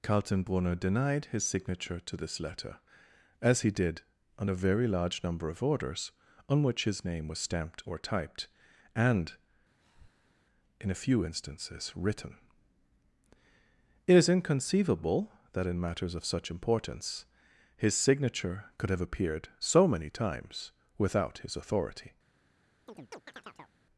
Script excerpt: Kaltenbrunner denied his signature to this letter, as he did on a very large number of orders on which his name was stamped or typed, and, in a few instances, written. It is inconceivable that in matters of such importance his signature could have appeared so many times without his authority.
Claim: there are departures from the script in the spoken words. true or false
false